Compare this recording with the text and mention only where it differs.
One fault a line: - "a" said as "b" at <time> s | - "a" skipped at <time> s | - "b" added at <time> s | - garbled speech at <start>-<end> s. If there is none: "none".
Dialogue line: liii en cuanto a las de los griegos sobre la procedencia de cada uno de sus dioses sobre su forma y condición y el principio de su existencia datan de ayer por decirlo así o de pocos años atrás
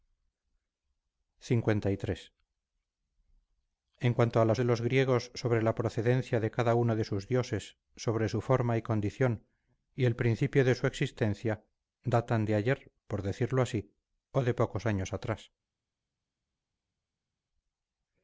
none